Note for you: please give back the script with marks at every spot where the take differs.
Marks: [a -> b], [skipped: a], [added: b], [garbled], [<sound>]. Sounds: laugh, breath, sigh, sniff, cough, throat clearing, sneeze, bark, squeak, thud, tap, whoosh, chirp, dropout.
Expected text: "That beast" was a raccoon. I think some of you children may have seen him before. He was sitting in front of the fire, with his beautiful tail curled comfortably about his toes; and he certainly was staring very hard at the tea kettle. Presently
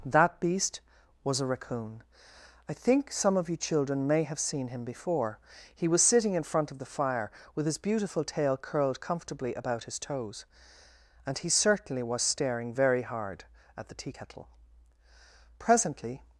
"That beast" was a raccoon. I think some of you children may have seen him before. He was sitting in front of the fire, with his beautiful tail curled comfortably about his toes; and he certainly was staring very hard at the tea kettle. Presently